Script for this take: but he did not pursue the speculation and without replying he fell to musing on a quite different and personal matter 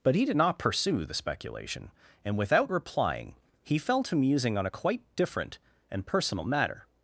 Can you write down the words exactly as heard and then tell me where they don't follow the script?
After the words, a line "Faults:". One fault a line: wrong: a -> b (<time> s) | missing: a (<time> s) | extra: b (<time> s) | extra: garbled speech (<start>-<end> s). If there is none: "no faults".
but he did not pursue the speculation and without replying he fell to musing on a quite different and personal matter
Faults:
no faults